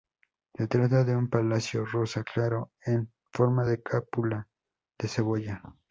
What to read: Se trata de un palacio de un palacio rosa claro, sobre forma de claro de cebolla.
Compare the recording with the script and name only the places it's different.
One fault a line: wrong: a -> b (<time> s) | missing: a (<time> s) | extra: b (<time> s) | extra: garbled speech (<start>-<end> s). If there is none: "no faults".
missing: de un palacio (1.9 s)
wrong: sobre -> en (2.8 s)
wrong: claro -> cúpula (3.8 s)